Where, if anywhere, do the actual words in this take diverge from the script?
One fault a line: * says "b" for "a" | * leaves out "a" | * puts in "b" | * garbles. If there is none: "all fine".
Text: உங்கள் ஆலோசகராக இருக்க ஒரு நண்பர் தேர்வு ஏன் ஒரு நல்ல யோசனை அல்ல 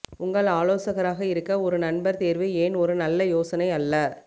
all fine